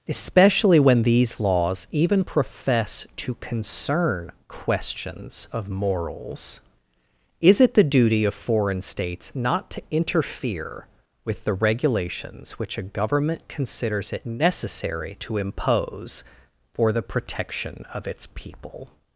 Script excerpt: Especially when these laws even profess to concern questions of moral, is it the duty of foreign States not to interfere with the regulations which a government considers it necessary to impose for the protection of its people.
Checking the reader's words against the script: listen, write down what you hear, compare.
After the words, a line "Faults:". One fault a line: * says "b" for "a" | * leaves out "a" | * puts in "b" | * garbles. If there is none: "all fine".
Especially when these laws even profess to concern questions of morals, is it the duty of foreign States not to interfere with the regulations which a government considers it necessary to impose for the protection of its people.
Faults:
* says "morals" for "moral"